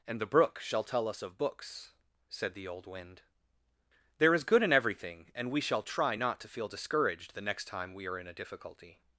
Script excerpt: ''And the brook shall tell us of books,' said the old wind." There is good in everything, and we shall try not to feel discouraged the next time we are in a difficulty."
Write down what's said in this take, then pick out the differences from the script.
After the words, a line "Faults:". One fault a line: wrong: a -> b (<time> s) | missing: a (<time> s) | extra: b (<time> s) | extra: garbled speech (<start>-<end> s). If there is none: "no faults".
''And the brook shall tell us of books,' said the old wind." There is good in everything, and we shall try not to feel discouraged the next time we are in a difficulty."
Faults:
no faults